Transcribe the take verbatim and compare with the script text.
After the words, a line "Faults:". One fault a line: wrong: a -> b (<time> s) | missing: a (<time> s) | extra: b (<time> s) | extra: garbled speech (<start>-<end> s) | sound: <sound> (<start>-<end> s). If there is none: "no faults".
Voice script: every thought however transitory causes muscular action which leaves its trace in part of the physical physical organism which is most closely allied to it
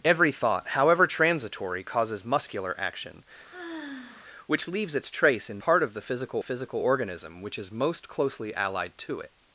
every thought however transitory causes muscular action which leaves its trace in part of the physical physical organism which is most closely allied to it
Faults:
sound: sigh (3.5-4.2 s)